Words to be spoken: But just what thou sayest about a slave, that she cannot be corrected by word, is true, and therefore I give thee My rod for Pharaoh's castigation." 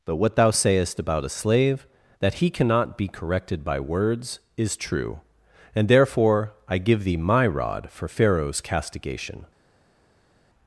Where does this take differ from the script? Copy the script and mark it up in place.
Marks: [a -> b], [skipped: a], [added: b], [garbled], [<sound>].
But [skipped: just] what thou sayest about a slave, that [she -> he] cannot be corrected by [word, -> words] is true, and therefore I give thee My rod for Pharaoh's castigation."